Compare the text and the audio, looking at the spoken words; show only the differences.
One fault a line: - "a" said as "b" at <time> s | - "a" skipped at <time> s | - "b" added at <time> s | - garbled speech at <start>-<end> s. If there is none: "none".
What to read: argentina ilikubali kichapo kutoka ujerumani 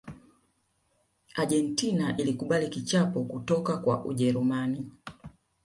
- "kwa" added at 3.8 s